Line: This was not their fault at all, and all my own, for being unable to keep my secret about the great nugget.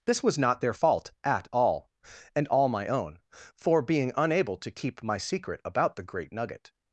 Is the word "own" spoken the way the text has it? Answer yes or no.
yes